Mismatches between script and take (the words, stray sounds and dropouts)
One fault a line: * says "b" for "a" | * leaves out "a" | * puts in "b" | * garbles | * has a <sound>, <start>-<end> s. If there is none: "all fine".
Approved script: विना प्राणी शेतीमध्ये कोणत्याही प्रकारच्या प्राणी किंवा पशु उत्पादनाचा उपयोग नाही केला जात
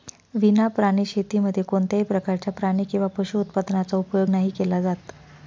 all fine